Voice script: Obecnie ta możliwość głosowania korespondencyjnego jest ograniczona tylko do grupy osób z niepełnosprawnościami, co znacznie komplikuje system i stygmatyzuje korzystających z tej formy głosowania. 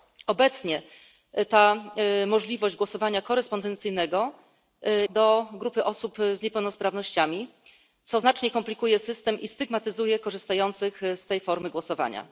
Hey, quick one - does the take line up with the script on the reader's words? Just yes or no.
no